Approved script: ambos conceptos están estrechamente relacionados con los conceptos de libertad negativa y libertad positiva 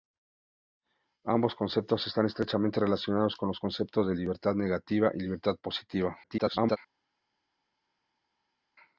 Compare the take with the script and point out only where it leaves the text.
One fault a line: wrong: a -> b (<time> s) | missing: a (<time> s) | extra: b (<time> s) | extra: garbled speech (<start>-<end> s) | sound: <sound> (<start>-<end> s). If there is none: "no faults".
extra: garbled speech (6.2-6.8 s)